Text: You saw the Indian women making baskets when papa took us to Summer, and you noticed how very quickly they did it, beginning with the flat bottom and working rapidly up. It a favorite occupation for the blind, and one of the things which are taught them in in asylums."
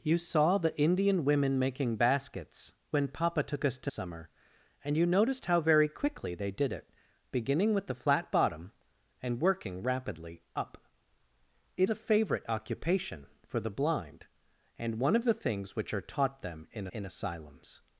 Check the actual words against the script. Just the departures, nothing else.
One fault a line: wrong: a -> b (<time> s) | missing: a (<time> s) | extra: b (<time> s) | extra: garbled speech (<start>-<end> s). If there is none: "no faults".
no faults